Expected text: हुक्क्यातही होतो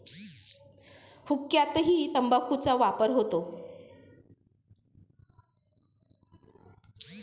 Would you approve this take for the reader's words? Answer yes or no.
no